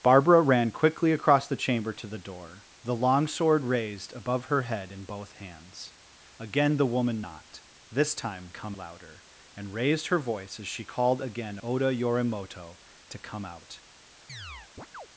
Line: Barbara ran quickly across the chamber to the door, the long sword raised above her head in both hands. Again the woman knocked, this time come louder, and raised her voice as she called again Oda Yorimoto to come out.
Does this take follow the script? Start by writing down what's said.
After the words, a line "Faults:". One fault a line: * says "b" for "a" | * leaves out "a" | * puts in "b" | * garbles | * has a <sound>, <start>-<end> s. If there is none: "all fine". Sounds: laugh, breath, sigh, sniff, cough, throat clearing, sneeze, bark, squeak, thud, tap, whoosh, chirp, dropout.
Barbara ran quickly across the chamber to the door, the long sword raised above her head in both hands. Again the woman knocked, this time come louder, and raised her voice as she called again Oda Yorimoto to come out.
Faults:
* has a chirp, 14.3-15.1 s